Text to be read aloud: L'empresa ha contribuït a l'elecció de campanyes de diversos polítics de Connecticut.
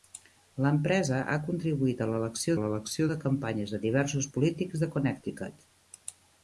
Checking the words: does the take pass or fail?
fail